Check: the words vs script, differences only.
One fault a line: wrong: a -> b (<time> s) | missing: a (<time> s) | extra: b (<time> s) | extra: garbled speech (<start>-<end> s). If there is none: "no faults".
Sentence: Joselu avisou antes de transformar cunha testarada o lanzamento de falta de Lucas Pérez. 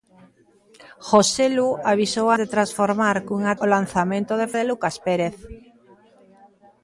missing: antes (2.3 s)
missing: testarada (3.5 s)
missing: falta (4.5 s)